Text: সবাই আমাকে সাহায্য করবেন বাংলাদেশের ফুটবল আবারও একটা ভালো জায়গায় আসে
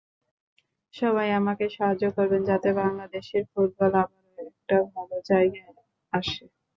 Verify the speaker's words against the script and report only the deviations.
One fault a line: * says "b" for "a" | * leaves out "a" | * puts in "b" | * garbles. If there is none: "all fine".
* puts in "যাতে"